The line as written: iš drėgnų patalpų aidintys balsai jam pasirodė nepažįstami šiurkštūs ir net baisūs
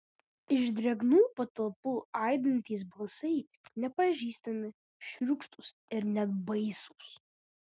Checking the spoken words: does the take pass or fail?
fail